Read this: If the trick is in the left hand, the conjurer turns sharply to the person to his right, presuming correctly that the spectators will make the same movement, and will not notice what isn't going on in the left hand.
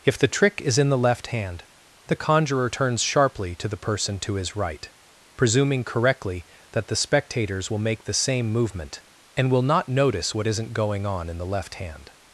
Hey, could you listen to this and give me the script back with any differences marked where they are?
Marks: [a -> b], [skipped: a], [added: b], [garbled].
If the trick is in the left hand, the conjurer turns sharply to the person to his right, presuming correctly that the spectators will make the same movement, and will not notice what isn't going on in the left hand.